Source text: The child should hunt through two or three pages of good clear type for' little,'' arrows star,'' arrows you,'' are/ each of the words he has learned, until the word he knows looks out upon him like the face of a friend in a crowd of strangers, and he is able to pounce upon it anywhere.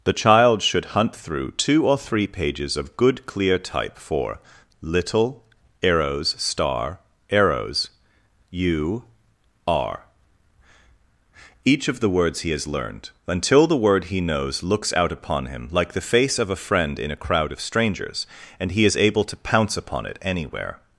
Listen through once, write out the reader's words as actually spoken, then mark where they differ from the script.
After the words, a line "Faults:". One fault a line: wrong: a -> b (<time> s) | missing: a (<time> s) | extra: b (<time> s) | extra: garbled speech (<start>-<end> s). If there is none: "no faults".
The child should hunt through two or three pages of good clear type for' little,'' arrows star,'' arrows you,'' are/ each of the words he has learned, until the word he knows looks out upon him like the face of a friend in a crowd of strangers, and he is able to pounce upon it anywhere.
Faults:
no faults